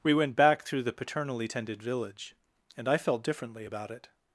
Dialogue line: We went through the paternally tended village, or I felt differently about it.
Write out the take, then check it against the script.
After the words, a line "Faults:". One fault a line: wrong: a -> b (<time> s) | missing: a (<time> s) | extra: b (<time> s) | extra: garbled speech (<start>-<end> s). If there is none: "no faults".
We went back through the paternally tended village, and I felt differently about it.
Faults:
extra: back (0.3 s)
wrong: or -> and (2.8 s)